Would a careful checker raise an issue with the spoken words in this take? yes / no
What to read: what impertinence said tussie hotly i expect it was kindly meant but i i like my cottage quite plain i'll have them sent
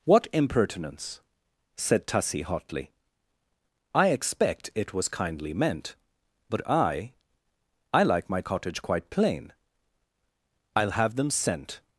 no